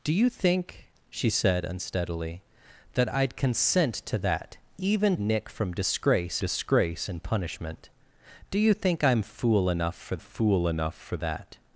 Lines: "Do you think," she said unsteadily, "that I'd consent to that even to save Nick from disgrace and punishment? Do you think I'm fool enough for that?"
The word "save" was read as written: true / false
false